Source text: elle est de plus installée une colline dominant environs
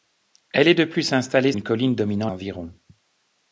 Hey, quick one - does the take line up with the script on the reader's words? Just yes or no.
yes